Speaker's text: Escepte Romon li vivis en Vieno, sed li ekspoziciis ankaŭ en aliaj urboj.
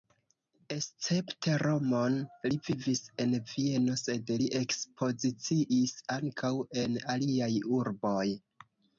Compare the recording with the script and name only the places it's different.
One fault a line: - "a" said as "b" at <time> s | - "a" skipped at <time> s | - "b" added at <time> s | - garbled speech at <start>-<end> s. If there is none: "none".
none